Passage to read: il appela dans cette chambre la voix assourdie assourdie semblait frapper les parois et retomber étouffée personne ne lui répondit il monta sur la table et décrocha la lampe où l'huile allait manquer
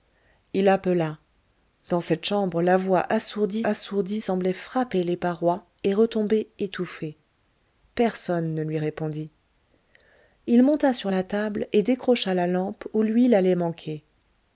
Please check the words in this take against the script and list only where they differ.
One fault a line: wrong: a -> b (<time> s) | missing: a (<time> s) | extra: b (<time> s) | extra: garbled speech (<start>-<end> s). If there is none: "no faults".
no faults